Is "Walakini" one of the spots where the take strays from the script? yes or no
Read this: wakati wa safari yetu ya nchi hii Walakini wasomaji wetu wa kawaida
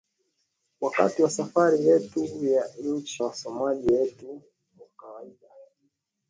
yes